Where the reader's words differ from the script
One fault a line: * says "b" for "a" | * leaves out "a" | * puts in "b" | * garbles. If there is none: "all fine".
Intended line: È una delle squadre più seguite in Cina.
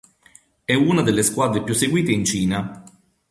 all fine